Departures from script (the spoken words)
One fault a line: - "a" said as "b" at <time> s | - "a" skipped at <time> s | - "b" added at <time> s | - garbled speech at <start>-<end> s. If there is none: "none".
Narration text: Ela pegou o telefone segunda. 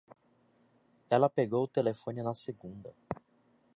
- "na" added at 2.2 s